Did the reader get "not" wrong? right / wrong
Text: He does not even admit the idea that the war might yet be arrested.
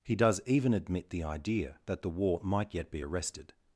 wrong